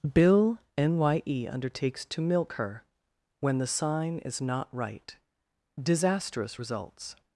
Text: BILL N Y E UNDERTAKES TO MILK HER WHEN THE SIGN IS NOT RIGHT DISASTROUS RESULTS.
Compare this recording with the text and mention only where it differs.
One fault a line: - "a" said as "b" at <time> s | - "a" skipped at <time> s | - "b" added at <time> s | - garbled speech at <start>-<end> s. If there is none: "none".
none